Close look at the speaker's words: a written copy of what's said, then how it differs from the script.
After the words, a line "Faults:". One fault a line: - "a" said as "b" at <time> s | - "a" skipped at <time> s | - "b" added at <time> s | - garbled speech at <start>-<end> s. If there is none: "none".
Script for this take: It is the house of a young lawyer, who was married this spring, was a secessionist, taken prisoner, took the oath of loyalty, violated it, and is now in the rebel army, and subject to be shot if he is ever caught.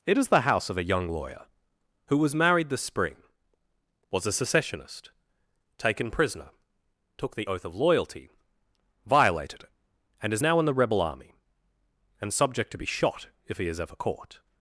It is the house of a young lawyer, who was married this spring, was a secessionist, taken prisoner, took the oath of loyalty, violated it, and is now in the rebel army, and subject to be shot if he is ever caught.
Faults:
none